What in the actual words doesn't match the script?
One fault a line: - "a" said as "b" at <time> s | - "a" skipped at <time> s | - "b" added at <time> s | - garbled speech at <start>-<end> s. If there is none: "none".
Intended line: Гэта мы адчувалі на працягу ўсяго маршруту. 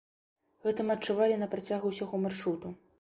none